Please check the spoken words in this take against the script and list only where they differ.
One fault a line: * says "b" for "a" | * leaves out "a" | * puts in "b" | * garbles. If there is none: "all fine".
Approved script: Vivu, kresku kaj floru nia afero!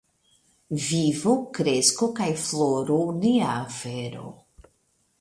all fine